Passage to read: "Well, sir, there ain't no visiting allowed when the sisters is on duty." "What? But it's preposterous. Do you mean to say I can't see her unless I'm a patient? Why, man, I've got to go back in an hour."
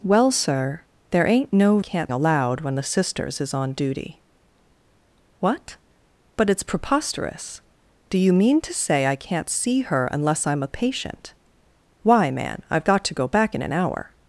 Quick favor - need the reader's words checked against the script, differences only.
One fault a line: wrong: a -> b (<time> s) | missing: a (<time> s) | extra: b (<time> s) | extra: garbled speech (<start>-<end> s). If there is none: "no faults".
wrong: visiting -> can't (1.8 s)